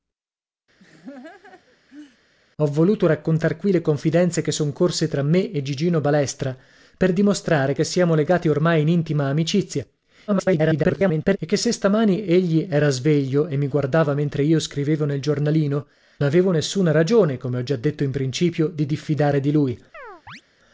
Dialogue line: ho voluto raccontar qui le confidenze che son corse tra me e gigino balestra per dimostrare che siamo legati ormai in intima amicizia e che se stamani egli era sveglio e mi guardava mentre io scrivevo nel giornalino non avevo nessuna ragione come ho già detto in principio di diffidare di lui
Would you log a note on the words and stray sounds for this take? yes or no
yes